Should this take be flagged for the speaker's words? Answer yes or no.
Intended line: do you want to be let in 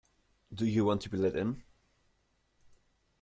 no